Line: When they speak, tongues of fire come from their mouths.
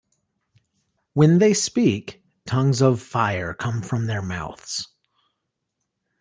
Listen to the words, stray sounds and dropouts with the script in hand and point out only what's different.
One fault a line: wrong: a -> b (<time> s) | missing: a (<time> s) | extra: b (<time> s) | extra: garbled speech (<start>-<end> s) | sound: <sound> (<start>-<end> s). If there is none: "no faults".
no faults